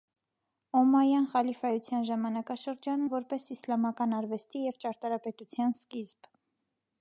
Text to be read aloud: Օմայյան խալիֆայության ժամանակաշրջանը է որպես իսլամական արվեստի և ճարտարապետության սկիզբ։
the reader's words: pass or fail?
pass